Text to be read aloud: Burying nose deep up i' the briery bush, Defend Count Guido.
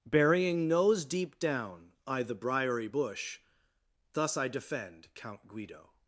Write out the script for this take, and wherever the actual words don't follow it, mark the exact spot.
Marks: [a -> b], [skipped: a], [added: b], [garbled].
Burying nose deep [up -> down] i' the briery bush, [added: Thus I] Defend Count Guido.